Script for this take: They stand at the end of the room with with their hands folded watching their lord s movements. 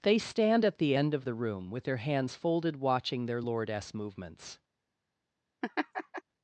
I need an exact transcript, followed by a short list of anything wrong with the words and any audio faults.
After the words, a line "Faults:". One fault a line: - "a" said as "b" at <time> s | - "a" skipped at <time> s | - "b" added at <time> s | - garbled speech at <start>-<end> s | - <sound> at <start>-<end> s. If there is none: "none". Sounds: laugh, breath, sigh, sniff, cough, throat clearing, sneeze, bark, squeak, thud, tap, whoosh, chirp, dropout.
They stand at the end of the room with their hands folded watching their lord s movements.
Faults:
- "with" skipped at 1.9 s
- laugh at 5.6-6.2 s